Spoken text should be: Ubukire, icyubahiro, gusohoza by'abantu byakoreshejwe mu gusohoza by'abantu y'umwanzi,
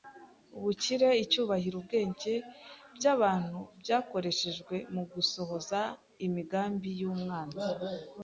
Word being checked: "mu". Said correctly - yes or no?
yes